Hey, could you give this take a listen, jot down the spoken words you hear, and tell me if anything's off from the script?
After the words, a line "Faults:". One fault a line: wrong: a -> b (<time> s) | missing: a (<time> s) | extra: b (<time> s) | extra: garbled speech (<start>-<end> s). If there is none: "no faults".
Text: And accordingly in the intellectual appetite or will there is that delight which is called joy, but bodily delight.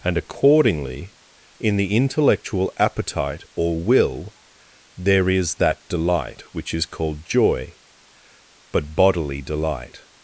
And accordingly in the intellectual appetite or will there is that delight which is called joy, but bodily delight.
Faults:
no faults